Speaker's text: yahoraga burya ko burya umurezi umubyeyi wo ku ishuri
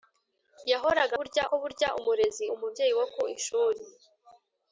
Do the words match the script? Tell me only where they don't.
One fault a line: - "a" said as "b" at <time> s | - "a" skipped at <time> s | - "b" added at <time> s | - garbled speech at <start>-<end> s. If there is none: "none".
none